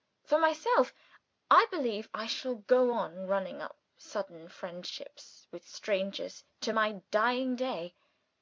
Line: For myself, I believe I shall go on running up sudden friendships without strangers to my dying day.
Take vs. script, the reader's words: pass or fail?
fail